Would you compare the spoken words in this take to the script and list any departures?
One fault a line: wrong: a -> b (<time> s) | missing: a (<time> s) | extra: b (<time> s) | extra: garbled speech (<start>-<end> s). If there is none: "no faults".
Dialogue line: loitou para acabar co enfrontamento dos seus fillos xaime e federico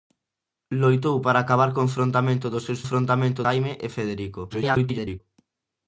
wrong: fillos -> enfrontamento (2.8 s)
extra: garbled speech (4.5-5.2 s)